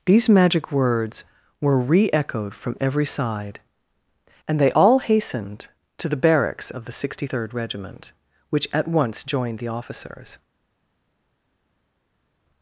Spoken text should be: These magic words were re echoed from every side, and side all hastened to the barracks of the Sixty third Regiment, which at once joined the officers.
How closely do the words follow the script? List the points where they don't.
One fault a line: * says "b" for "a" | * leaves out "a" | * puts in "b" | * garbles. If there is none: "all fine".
* says "they" for "side"